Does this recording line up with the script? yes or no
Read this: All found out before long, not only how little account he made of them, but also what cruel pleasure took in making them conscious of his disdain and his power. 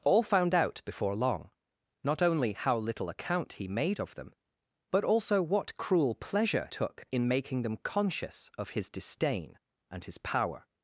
yes